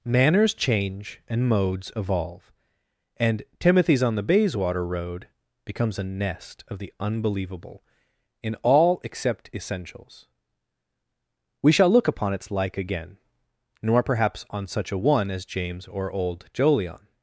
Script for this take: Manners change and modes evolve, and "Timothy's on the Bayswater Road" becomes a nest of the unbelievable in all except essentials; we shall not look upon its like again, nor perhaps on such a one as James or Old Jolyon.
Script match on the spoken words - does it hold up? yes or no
no